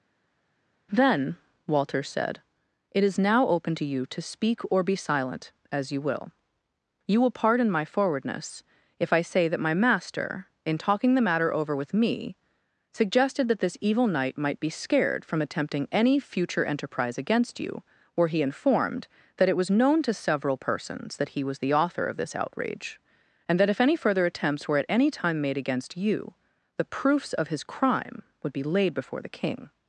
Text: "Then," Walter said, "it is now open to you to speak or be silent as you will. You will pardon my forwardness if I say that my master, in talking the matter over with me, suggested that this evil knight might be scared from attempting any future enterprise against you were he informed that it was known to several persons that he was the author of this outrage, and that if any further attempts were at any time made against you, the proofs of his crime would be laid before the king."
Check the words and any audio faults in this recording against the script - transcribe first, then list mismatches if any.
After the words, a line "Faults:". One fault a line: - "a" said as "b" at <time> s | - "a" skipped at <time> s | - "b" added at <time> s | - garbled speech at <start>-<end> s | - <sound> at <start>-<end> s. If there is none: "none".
"Then," Walter said, "it is now open to you to speak or be silent as you will. You will pardon my forwardness if I say that my master, in talking the matter over with me, suggested that this evil knight might be scared from attempting any future enterprise against you were he informed that it was known to several persons that he was the author of this outrage, and that if any further attempts were at any time made against you, the proofs of his crime would be laid before the king."
Faults:
none